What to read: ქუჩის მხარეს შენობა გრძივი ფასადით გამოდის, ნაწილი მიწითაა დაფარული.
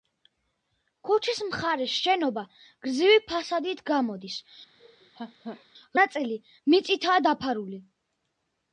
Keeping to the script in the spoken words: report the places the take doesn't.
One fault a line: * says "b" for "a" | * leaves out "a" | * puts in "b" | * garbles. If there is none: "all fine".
all fine